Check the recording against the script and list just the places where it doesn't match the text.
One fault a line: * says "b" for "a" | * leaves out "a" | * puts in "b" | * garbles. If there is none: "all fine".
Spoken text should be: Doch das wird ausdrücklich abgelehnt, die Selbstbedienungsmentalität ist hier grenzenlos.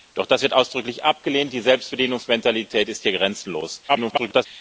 * garbles